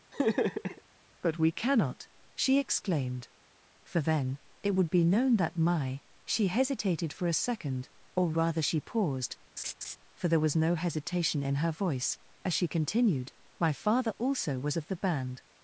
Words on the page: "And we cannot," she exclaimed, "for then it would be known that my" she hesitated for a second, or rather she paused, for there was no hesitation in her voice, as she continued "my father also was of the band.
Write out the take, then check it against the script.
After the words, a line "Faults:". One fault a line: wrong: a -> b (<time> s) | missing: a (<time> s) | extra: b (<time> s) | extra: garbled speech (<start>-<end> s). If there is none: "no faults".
"But we cannot," she exclaimed, "for then it would be known that my" she hesitated for a second, or rather she paused, for there was no hesitation in her voice, as she continued "my father also was of the band.
Faults:
wrong: And -> But (1.2 s)